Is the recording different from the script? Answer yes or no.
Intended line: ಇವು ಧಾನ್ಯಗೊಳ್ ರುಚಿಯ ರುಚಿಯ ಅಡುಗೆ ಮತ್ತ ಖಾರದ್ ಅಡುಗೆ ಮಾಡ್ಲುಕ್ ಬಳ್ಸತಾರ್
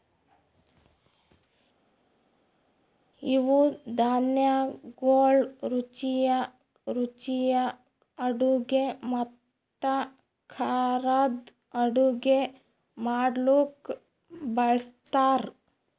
no